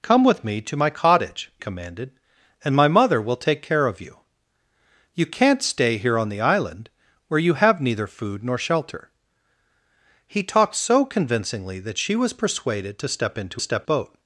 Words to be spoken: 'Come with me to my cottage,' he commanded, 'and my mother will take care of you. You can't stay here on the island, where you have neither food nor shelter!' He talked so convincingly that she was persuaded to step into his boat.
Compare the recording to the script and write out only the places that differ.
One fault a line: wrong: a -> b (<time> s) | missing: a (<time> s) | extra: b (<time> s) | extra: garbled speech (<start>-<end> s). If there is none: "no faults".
missing: he (1.5 s)
wrong: his -> step (13.6 s)